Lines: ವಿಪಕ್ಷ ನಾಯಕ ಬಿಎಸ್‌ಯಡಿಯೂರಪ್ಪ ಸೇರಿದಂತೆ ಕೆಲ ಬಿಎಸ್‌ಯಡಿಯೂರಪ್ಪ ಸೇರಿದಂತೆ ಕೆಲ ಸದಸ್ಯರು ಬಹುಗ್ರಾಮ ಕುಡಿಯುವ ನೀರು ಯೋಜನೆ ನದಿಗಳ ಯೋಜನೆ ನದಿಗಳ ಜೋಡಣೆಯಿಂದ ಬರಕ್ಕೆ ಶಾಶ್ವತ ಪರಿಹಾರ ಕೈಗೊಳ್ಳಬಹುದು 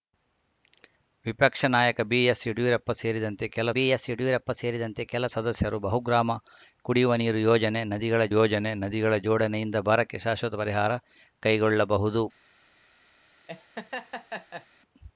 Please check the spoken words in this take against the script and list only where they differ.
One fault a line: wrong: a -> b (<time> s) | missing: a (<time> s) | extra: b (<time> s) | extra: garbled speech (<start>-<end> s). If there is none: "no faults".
no faults